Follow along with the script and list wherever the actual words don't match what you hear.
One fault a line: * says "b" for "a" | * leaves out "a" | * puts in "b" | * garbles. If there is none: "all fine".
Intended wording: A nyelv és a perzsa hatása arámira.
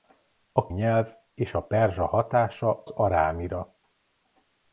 all fine